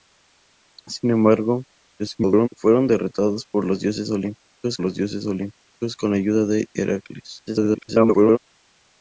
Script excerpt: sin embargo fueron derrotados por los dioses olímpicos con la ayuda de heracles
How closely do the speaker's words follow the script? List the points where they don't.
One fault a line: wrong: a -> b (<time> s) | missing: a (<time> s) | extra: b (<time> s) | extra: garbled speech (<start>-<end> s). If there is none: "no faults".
extra: garbled speech (2.0-2.5 s)
extra: los dioses olímpicos (4.8 s)
extra: garbled speech (7.5-8.4 s)